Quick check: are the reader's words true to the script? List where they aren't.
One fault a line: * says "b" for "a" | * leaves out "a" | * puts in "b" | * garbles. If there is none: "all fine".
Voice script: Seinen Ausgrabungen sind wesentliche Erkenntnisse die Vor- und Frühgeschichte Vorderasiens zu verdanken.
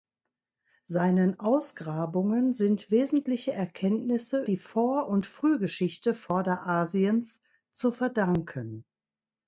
all fine